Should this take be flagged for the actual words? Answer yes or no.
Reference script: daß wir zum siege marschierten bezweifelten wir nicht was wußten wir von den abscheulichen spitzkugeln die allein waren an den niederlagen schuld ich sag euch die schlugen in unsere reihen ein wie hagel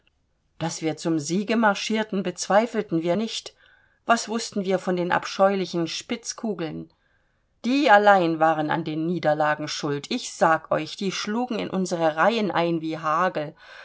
no